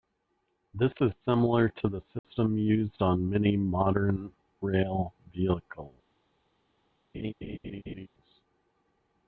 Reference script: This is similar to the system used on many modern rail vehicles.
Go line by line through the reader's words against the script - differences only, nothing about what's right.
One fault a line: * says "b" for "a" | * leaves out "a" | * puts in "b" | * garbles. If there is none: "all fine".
all fine